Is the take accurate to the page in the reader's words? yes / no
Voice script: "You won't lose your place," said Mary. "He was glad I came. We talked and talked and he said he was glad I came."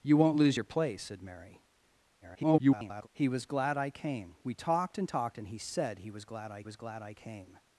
no